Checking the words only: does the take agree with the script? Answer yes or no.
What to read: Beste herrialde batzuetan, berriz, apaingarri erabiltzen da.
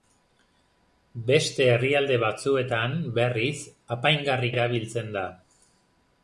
yes